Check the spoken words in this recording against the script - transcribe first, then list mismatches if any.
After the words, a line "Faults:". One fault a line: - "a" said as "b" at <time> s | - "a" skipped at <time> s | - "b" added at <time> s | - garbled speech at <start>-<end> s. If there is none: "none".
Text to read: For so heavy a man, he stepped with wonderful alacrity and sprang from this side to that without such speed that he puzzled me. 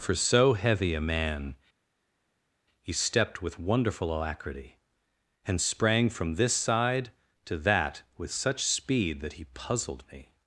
For so heavy a man, he stepped with wonderful alacrity and sprang from this side to that with such speed that he puzzled me.
Faults:
- "without" said as "with" at 8.2 s